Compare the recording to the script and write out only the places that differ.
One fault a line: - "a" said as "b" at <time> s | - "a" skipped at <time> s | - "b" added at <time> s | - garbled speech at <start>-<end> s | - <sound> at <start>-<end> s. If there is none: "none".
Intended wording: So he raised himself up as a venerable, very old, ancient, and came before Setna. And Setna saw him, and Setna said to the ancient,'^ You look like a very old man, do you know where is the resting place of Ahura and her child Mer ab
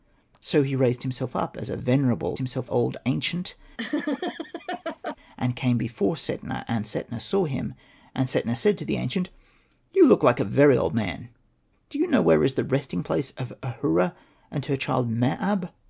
- "very" said as "himself" at 2.4 s
- laugh at 3.8-5.2 s